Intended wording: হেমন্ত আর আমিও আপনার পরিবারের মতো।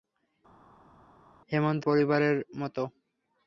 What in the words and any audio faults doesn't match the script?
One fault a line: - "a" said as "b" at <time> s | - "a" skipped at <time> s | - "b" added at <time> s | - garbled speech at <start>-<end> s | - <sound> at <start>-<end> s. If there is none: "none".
- "আর আমিও আপনার" skipped at 1.8 s